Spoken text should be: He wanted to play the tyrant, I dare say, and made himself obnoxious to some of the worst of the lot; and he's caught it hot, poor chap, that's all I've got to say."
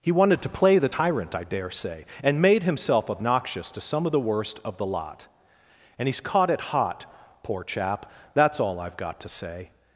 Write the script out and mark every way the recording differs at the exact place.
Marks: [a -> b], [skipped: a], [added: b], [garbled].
He wanted to play the tyrant, I dare say, and made himself obnoxious to some of the worst of the lot; and he's caught it hot, poor chap, that's all I've got to say."